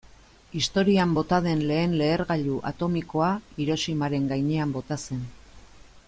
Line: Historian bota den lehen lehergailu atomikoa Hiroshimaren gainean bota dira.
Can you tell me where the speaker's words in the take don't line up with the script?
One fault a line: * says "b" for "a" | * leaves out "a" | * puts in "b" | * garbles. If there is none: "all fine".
* says "zen" for "dira"